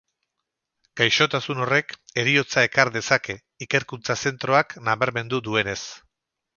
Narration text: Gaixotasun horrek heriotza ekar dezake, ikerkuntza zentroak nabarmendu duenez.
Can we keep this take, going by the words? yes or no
yes